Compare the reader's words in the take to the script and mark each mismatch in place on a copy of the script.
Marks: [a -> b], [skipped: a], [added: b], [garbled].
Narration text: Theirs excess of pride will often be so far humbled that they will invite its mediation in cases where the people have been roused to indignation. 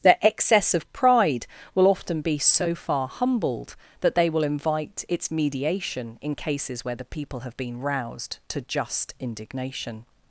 [Theirs -> Their] excess of pride will often be so far humbled that they will invite its mediation in cases where the people have been roused to [added: just] indignation.